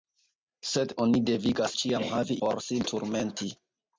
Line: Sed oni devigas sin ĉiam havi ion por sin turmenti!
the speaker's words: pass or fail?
fail